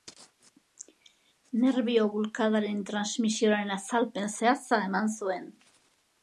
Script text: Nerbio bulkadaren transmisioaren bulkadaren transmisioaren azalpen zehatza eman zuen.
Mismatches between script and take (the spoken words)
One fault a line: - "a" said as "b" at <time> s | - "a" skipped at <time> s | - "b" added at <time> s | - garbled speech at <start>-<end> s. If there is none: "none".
- "bulkadaren transmisioaren" skipped at 3.8 s